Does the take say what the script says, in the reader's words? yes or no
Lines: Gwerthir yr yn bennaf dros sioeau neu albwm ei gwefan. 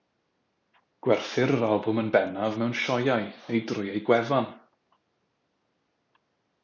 no